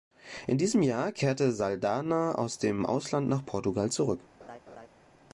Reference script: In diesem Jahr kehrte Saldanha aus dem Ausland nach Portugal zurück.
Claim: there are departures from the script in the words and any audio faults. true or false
true